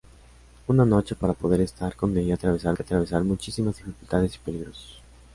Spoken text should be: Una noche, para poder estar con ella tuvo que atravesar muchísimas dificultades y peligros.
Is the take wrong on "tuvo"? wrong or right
wrong